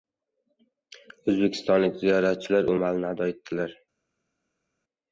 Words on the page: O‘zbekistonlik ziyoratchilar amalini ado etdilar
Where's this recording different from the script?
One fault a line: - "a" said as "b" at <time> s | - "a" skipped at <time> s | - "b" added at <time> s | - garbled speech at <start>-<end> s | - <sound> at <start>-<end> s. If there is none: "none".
none